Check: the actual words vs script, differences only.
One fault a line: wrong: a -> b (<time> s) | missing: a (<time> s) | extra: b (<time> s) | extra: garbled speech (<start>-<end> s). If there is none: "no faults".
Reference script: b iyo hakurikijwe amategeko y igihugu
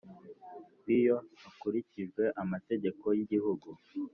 no faults